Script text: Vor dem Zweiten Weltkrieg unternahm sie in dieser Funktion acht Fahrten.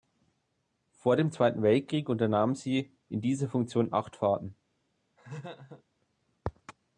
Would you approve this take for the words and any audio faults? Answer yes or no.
no